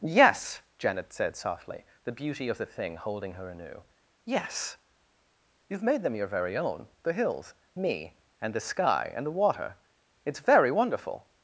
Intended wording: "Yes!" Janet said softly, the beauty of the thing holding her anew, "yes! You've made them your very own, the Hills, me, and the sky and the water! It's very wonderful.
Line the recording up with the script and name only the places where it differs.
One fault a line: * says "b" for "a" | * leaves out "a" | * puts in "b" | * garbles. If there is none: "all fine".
all fine